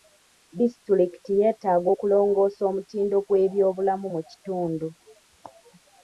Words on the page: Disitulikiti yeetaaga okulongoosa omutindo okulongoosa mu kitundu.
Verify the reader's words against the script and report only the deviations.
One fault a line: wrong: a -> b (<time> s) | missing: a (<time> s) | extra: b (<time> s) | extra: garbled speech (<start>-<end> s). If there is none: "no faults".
wrong: okulongoosa -> gw'ebyobulamu (3.3 s)